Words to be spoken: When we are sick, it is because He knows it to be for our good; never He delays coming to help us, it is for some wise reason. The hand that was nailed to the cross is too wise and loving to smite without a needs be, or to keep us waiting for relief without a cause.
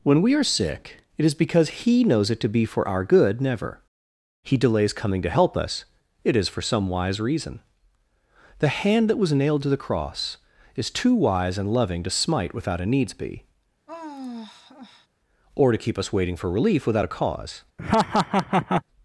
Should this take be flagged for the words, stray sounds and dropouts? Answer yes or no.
yes